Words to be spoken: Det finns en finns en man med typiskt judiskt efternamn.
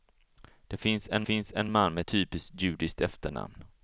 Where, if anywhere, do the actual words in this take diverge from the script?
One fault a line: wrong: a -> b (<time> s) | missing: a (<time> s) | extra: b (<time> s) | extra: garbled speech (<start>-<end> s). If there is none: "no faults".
no faults